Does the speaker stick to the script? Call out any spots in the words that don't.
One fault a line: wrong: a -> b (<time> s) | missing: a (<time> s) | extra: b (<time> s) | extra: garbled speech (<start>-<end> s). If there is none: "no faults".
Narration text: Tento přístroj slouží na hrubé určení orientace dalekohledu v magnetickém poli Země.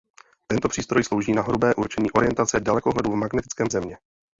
missing: poli (3.7 s)